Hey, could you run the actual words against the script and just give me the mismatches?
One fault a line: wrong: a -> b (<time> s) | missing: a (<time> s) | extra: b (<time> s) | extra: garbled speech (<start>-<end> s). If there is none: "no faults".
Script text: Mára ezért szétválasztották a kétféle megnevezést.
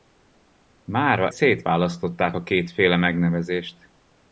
missing: ezért (1.3 s)